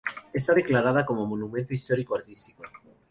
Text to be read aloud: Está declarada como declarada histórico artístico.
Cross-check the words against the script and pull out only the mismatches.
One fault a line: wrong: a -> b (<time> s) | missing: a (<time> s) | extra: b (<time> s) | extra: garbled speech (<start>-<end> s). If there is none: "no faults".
wrong: declarada -> monumento (1.2 s)